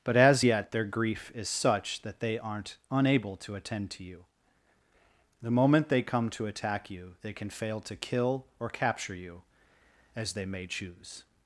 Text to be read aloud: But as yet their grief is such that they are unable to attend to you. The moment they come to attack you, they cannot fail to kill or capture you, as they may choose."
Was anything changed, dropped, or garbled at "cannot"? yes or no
yes